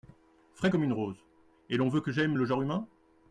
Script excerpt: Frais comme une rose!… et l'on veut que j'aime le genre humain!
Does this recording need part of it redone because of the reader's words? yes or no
no